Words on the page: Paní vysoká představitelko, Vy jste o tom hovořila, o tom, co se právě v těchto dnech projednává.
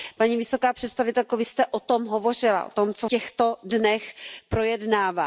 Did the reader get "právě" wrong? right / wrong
wrong